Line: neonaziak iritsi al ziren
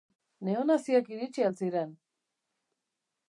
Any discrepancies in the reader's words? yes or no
no